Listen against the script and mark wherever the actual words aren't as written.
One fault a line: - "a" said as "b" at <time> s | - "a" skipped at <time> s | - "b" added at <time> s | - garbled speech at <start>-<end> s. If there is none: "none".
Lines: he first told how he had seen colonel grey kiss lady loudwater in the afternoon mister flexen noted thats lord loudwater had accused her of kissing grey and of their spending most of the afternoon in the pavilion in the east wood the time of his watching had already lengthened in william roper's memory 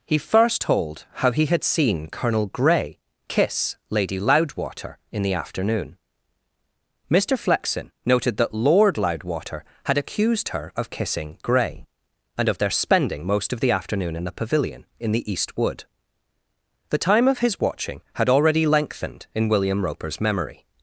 - "thats" said as "that" at 8.4 s